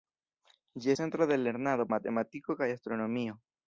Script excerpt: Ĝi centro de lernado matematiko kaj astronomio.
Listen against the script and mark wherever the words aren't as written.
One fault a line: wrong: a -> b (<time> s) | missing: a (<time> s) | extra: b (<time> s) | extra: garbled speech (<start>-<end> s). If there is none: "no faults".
no faults